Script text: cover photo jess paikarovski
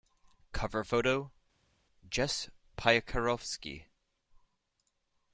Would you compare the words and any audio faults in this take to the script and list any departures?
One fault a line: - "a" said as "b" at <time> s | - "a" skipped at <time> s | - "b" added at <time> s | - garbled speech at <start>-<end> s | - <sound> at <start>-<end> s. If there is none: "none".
none